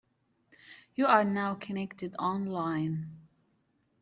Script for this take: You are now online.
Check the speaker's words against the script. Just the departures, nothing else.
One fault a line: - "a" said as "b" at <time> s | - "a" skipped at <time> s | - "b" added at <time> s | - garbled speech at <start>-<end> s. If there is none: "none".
- "connected" added at 1.6 s